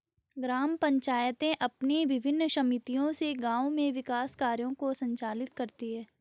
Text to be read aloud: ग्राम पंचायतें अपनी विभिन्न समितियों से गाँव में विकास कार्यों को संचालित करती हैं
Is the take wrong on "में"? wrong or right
right